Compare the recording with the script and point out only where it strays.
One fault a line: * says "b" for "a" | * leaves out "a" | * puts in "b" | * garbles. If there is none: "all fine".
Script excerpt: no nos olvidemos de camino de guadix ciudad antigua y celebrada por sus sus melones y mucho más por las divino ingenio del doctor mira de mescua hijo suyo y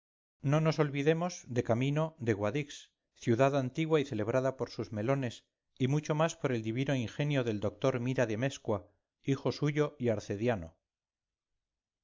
* leaves out "sus"
* says "el" for "las"